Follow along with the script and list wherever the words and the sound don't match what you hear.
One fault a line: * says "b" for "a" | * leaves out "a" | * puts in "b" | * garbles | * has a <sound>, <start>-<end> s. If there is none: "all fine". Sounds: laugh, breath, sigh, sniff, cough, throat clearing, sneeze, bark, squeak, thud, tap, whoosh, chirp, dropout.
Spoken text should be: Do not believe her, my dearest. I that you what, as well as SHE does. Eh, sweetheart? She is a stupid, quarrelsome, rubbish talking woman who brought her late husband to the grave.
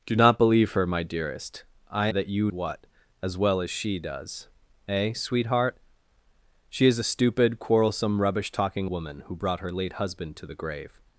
all fine